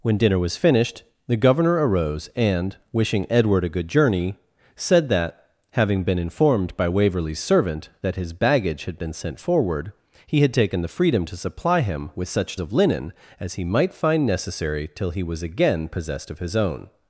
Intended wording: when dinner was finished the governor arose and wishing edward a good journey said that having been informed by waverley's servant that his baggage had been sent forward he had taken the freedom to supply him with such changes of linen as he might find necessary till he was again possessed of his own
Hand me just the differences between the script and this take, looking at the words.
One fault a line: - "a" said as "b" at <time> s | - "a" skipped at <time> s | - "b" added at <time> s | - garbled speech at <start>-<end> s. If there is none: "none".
- "changes" skipped at 12.6 s